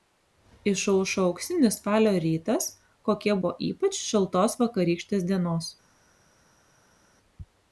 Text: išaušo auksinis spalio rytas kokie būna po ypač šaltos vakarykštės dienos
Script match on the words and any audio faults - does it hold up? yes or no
no